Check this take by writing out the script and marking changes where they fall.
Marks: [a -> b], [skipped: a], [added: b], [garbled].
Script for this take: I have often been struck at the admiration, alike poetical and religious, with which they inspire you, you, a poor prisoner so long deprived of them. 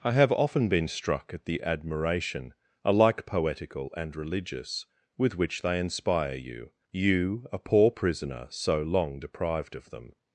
I have often been struck at the admiration, alike poetical and religious, with which they inspire you, you, a poor prisoner so long deprived of them.